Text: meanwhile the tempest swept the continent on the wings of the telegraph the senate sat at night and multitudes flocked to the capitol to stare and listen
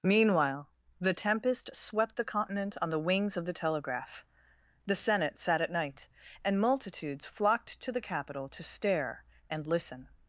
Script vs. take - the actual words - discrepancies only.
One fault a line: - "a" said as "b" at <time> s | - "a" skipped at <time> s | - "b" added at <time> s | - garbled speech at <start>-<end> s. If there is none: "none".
none